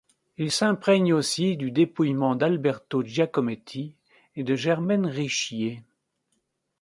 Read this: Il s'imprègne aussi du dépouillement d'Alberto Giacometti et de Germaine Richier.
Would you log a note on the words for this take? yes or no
no